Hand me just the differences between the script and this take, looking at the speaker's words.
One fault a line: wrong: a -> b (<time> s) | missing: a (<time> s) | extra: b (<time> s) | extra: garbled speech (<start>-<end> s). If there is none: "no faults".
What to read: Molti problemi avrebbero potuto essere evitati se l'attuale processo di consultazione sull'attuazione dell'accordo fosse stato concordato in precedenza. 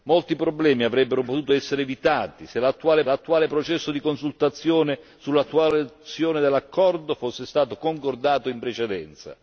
extra: l'attuale (3.0 s)